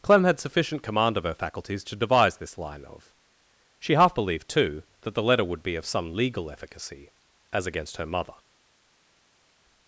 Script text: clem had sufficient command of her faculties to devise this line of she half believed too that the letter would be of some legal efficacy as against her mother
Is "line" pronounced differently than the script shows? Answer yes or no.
no